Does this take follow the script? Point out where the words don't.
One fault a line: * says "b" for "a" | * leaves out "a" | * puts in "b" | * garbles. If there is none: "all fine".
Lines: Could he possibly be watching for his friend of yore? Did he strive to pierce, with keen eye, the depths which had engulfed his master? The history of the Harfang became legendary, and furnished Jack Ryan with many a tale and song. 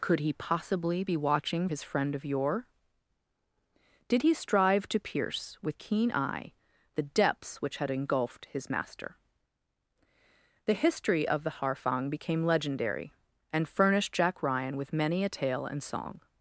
* leaves out "for"